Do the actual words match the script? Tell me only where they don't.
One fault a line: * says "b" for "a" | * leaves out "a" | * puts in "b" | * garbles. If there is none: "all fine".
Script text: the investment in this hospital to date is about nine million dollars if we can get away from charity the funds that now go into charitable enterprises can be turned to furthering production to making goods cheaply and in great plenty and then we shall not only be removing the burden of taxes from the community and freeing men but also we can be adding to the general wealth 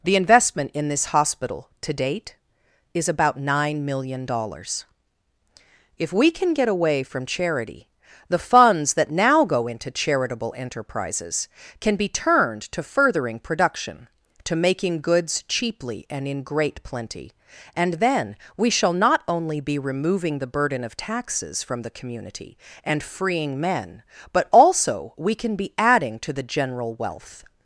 all fine